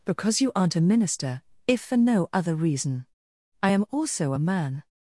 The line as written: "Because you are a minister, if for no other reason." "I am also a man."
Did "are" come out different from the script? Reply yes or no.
yes